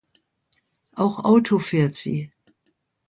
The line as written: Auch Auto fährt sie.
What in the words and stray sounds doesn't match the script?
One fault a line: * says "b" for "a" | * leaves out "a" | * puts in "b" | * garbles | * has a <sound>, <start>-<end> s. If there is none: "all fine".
all fine